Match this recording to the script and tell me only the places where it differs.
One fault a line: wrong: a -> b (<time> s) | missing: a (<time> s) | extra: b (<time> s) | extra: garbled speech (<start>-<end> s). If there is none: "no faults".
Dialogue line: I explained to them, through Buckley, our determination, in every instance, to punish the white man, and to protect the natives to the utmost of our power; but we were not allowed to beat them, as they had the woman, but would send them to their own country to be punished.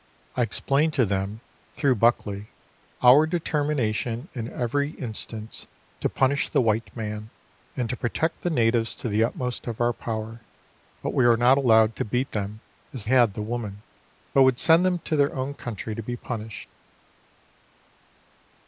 missing: they (13.1 s)